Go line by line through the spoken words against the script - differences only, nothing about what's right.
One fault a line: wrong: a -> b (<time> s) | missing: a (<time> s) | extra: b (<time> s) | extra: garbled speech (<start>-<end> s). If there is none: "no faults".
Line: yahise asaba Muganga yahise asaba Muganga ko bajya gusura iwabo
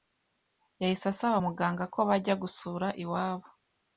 missing: yahise asaba Muganga (1.8 s)